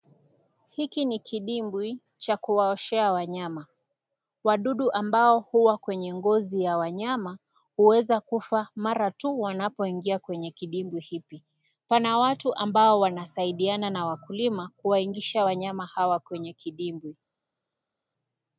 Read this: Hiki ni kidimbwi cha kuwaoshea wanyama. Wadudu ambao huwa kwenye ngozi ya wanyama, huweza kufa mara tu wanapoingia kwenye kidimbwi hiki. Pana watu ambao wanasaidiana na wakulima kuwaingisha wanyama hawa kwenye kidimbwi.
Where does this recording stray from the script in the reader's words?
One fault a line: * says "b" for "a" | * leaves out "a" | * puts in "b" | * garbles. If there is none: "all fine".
all fine